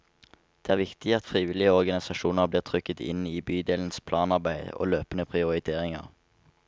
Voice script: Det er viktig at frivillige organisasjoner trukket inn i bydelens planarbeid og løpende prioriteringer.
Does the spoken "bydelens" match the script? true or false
true